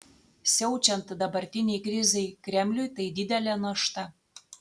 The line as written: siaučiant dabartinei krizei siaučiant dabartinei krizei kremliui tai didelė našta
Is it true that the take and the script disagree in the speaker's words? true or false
true